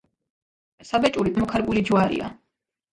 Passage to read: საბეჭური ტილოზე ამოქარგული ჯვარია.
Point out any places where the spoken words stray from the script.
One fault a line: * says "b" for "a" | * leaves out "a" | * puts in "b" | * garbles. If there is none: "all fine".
* leaves out "ტილოზე"